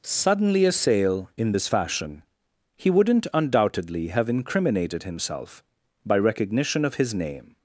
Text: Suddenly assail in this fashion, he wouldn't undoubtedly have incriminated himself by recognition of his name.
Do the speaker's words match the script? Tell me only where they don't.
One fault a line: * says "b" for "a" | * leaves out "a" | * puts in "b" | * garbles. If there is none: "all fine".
all fine